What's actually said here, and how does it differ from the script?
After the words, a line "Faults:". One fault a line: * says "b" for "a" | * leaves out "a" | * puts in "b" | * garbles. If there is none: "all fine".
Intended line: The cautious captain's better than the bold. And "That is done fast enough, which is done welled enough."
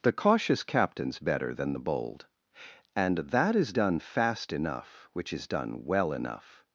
The cautious captain's better than the bold. And "That is done fast enough, which is done well enough."
Faults:
* says "well" for "welled"